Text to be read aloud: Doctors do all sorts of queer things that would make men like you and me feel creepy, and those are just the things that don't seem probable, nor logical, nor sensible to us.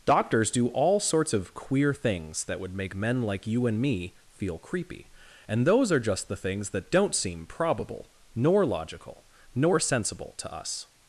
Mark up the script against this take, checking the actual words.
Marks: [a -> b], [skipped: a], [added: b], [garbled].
Doctors do all sorts of queer things that would make men like you and me feel creepy, and those are just the things that don't seem probable, nor logical, nor sensible to us.